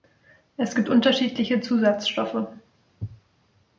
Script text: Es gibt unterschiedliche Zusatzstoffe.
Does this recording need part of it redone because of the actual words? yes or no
no